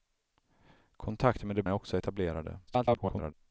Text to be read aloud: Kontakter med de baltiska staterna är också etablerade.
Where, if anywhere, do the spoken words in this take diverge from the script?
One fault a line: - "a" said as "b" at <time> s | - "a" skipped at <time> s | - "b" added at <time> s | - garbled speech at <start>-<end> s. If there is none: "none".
- "baltiska staterna" skipped at 1.6 s
- garbled speech at 2.7-3.3 s